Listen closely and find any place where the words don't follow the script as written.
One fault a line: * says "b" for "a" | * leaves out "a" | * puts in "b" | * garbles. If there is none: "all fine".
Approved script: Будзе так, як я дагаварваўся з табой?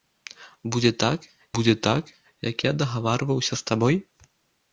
* puts in "будзе так"